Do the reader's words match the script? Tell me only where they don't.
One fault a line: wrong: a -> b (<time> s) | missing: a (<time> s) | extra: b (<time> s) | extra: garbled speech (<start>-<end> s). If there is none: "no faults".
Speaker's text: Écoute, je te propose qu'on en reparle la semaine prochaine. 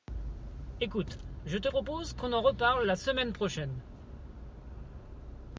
no faults